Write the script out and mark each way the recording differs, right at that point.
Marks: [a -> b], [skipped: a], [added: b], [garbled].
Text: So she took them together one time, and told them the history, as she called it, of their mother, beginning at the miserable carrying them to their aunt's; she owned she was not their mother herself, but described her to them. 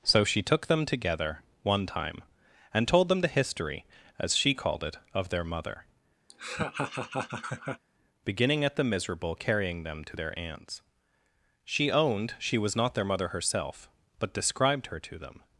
So she took them together one time, and told them the history, as she called it, of their mother, beginning at the miserable carrying them to their aunt's; she owned she was not their mother herself, but described her to them.